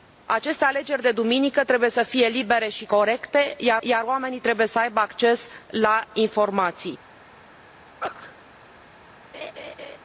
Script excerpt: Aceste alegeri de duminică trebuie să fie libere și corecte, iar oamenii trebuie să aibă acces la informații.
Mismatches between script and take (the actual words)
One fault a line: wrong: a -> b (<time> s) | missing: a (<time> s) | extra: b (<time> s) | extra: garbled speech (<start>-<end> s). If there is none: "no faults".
extra: iar (3.8 s)